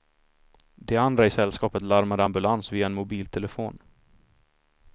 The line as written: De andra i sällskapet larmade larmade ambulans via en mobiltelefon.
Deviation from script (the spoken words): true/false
true